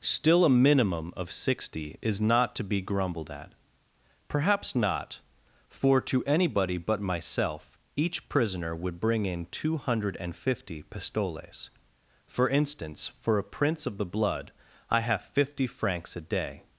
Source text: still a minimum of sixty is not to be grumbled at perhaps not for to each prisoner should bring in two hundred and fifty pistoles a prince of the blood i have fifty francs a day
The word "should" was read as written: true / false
false